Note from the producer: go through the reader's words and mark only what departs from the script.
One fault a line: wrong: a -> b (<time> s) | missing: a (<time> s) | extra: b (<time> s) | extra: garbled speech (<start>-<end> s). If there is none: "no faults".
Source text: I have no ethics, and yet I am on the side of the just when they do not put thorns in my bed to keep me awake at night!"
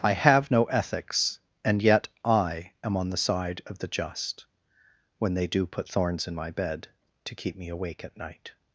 missing: not (5.7 s)